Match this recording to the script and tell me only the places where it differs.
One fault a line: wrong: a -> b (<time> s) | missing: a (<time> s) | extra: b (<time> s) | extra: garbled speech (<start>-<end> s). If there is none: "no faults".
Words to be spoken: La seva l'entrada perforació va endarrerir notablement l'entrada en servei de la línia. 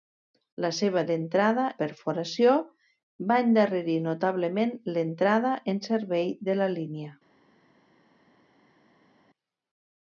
no faults